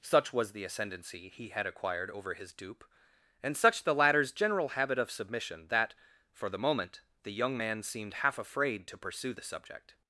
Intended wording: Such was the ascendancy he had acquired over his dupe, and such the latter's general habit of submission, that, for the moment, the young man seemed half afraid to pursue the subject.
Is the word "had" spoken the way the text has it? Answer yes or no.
yes